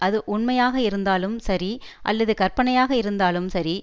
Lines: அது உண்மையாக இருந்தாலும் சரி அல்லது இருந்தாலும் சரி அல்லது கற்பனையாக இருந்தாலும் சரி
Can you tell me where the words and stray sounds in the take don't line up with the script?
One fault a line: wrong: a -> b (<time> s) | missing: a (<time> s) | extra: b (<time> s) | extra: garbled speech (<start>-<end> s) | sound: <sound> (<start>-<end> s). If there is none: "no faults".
missing: இருந்தாலும் சரி அல்லது (2.3 s)